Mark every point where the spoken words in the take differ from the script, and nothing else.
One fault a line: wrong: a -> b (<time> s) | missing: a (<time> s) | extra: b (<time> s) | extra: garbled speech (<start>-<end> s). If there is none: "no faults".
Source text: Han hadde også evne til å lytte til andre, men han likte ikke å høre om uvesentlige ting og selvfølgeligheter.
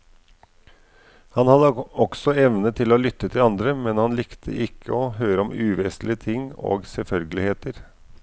no faults